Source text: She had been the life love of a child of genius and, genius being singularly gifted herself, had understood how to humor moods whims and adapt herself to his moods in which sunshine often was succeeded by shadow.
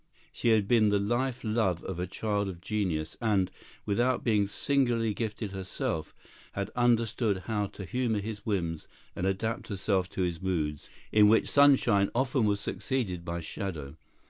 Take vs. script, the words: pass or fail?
fail